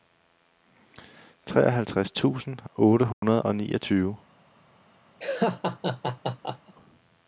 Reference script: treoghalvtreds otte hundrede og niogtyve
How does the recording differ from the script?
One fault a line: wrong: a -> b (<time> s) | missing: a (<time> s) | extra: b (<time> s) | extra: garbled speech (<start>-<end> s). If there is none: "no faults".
extra: tusind (2.1 s)